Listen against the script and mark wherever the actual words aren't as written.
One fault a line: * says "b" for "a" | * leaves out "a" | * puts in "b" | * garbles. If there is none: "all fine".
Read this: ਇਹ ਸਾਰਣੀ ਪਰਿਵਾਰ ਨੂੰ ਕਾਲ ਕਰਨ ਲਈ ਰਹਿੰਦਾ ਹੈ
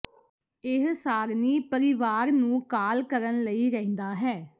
all fine